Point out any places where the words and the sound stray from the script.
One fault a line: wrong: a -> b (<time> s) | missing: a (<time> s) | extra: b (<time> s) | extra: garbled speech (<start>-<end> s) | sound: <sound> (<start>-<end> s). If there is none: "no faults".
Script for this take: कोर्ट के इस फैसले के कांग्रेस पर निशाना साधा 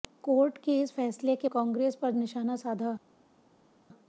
no faults